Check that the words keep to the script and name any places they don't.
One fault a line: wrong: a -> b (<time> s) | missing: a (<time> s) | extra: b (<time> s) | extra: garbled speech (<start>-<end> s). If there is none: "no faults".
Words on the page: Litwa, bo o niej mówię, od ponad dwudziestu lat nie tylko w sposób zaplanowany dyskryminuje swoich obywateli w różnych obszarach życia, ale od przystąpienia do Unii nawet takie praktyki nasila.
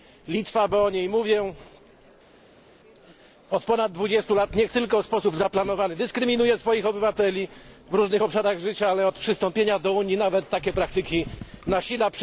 no faults